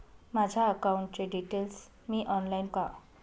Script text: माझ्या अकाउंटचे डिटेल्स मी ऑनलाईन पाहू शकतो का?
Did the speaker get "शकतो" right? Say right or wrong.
wrong